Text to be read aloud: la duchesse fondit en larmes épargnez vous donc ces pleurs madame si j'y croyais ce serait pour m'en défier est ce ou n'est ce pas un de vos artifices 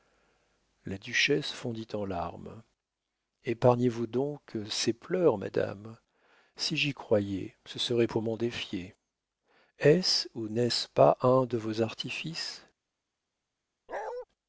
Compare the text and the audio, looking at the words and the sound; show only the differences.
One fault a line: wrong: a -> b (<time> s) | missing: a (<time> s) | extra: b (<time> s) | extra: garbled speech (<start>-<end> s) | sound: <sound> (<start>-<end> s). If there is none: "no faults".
sound: bark (13.9-14.3 s)